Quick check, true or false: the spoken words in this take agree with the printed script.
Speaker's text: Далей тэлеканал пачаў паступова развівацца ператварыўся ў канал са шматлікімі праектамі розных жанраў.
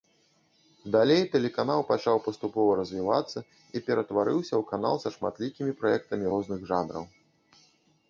false